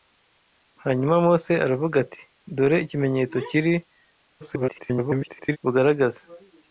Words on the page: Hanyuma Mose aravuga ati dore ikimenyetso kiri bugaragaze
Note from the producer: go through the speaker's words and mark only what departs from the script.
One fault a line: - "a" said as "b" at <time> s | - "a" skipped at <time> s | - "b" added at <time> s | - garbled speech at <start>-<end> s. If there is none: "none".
- garbled speech at 4.4-5.6 s